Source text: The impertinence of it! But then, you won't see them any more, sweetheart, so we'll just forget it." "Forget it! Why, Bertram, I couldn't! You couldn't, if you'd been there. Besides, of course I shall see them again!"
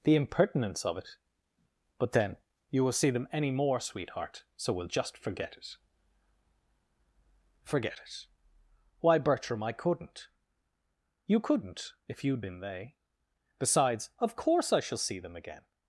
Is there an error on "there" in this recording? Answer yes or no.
yes